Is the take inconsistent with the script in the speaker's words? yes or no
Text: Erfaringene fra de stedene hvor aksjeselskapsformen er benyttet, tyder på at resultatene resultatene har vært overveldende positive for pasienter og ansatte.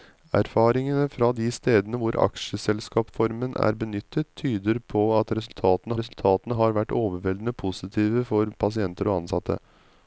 no